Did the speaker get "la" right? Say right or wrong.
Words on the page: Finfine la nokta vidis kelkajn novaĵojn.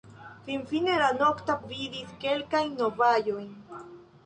right